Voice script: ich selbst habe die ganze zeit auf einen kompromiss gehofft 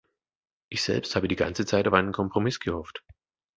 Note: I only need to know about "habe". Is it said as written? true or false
true